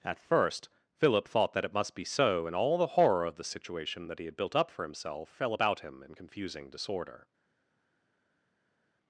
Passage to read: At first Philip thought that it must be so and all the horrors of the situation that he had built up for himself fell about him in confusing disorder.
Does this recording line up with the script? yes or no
no